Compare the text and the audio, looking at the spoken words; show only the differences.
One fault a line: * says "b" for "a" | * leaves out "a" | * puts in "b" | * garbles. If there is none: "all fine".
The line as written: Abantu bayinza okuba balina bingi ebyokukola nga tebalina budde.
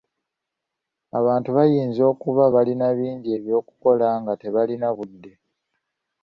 all fine